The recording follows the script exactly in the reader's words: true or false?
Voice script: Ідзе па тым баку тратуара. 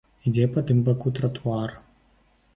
true